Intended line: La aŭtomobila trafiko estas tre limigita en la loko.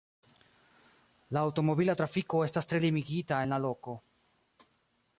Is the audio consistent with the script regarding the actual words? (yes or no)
yes